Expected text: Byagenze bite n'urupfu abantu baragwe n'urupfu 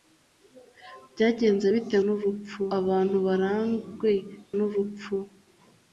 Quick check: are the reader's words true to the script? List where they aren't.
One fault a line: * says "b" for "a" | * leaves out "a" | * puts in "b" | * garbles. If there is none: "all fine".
all fine